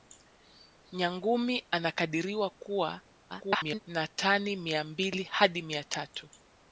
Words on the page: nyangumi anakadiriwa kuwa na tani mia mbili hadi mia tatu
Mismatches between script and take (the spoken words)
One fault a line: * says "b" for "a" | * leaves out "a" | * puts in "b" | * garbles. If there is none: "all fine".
* garbles